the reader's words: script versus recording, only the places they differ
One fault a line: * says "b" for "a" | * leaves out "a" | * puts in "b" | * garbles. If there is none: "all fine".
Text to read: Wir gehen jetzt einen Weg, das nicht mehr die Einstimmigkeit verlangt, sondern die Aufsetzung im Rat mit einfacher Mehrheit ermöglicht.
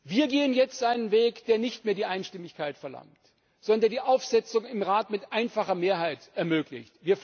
* says "der" for "das"